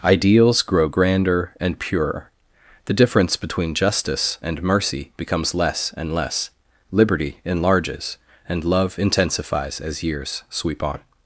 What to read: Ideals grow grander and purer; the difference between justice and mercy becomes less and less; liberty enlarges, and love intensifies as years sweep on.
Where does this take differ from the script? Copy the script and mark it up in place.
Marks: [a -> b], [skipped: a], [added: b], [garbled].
Ideals grow grander and purer; the difference between justice and mercy becomes less and less; liberty enlarges, and love intensifies as years sweep on.